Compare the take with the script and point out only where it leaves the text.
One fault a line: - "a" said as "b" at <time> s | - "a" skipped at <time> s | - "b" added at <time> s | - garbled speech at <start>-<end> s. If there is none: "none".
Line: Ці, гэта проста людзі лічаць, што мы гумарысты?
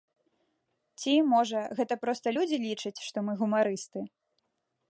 - "можа" added at 1.3 s